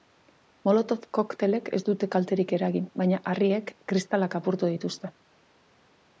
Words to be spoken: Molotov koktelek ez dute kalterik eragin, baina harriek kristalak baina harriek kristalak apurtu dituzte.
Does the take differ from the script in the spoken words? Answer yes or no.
yes